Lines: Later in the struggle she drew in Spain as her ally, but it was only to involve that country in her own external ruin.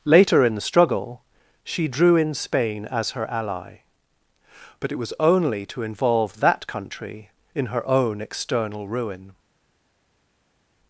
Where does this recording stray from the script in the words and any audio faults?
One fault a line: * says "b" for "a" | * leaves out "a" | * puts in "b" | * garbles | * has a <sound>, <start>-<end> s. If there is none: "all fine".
all fine